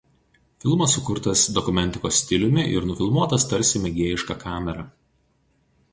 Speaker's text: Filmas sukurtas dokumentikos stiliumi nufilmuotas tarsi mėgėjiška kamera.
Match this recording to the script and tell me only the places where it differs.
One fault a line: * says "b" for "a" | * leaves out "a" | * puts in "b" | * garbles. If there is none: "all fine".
* puts in "ir"